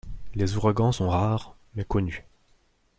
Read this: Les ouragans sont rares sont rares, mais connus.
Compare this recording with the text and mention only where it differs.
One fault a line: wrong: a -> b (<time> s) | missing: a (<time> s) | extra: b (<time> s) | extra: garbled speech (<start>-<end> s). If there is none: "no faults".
missing: sont rares (1.6 s)